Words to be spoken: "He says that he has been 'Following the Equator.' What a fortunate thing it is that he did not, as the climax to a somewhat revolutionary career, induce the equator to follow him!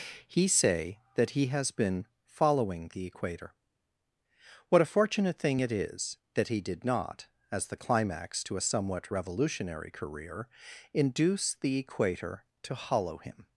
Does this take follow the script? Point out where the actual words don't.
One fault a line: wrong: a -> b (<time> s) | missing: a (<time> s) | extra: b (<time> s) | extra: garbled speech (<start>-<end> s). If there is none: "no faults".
wrong: says -> say (0.5 s)
wrong: follow -> hollow (12.8 s)